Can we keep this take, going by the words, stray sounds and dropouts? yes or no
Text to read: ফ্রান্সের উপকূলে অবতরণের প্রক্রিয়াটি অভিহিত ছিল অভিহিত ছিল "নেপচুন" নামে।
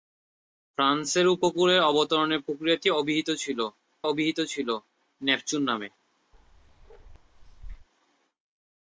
no